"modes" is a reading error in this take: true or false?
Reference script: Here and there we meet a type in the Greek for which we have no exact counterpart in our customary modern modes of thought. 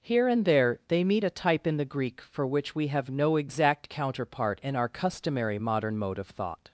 true